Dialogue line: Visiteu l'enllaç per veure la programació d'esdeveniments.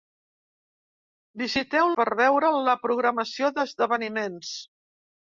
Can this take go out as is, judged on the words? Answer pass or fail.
fail